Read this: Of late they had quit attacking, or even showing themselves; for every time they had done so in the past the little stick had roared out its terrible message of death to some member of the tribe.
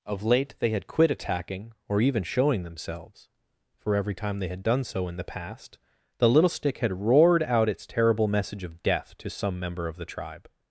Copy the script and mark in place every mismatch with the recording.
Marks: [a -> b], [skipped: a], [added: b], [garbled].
Of late they had quit attacking, or even showing themselves; for every time they had done so in the past the little stick had roared out its terrible message of death to some member of the tribe.